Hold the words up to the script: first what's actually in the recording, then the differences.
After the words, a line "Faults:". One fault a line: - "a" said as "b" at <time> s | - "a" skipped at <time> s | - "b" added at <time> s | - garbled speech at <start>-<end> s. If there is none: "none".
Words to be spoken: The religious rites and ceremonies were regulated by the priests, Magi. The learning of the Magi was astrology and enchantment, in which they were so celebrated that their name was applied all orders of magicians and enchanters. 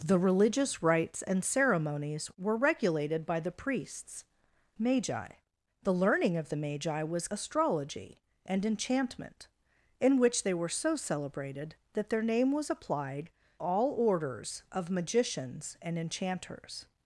The religious rites and ceremonies were regulated by the priests, Magi. The learning of the Magi was astrology and enchantment, in which they were so celebrated that their name was applied all orders of magicians and enchanters.
Faults:
none